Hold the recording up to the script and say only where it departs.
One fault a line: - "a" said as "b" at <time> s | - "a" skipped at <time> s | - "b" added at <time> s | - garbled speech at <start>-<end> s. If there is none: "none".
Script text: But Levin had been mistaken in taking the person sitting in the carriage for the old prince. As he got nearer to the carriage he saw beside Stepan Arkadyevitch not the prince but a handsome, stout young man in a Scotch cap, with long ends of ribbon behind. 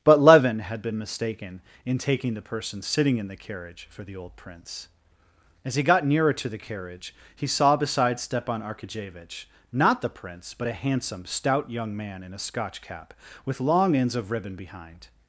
none